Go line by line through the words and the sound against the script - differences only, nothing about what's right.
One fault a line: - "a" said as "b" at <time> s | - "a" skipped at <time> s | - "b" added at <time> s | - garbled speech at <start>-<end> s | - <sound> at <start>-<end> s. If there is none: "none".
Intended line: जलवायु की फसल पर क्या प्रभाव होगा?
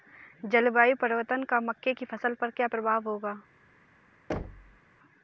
- "परिवर्तन का मक्के" added at 0.9 s
- thud at 4.3-4.8 s